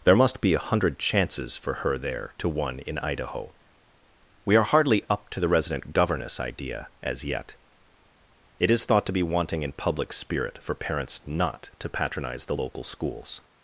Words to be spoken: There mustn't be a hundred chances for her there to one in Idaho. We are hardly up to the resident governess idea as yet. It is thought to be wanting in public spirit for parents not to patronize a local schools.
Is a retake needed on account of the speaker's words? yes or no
yes